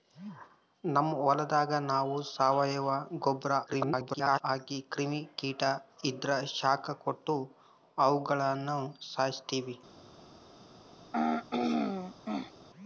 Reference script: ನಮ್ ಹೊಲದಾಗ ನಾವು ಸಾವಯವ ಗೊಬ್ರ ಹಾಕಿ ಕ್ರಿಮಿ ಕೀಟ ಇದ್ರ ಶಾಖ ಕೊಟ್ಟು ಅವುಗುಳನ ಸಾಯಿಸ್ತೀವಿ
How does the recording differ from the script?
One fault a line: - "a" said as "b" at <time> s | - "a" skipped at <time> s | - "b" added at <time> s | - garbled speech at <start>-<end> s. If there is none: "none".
- garbled speech at 3.7-4.4 s